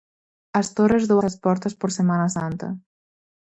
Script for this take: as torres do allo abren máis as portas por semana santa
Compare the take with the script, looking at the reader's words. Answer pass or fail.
fail